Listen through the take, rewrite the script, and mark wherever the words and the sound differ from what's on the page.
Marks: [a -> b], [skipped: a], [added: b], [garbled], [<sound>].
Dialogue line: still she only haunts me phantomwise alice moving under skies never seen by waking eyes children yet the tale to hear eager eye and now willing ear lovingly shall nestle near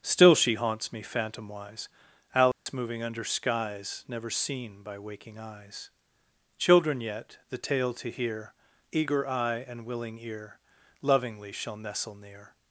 still she [skipped: only] haunts me phantomwise alice [dropout] moving under skies never seen by waking eyes children yet the tale to hear eager eye and [skipped: now] willing ear lovingly shall nestle near